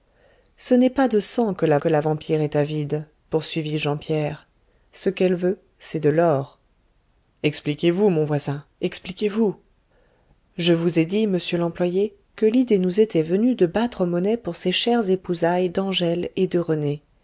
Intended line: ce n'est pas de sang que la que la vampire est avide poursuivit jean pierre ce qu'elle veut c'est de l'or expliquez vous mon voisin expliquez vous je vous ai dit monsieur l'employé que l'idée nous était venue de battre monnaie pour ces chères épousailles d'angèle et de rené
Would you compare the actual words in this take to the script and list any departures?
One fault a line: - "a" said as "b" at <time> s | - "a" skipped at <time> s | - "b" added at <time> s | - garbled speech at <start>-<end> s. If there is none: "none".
none